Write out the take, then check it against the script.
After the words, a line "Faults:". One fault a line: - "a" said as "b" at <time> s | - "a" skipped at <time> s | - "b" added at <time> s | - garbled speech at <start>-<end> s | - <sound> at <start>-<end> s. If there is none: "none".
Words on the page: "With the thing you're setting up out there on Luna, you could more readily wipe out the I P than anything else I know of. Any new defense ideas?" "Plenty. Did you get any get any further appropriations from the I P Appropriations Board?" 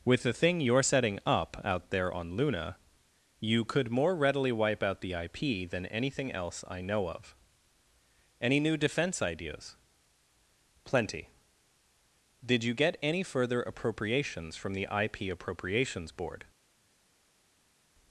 "With the thing you're setting up out there on Luna, you could more readily wipe out the I P than anything else I know of. Any new defense ideas?" "Plenty. Did you get any further appropriations from the I P Appropriations Board?"
Faults:
- "get any" skipped at 13.2 s